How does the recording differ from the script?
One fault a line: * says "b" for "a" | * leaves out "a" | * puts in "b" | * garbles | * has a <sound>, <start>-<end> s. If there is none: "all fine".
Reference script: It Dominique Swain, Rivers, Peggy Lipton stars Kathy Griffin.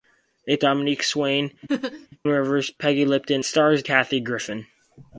* has a laugh, 1.7-2.1 s